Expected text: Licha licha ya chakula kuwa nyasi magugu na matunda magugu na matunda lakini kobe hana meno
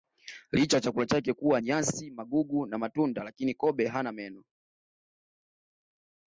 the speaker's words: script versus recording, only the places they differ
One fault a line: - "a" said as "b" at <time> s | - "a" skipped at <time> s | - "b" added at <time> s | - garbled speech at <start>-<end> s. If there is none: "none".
- "licha" skipped at 0.8 s
- "chake" added at 1.1 s
- "magugu na matunda" skipped at 3.2 s